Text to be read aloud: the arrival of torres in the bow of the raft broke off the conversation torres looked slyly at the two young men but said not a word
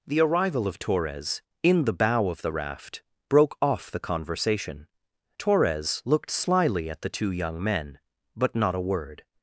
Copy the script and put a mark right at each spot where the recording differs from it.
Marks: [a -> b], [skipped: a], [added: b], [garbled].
the arrival of torres in the bow of the raft broke off the conversation torres looked slyly at the two young men but [skipped: said] not a word